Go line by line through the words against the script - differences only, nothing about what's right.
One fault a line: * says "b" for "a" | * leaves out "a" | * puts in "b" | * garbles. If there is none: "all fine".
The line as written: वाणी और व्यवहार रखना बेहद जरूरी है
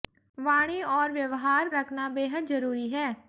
all fine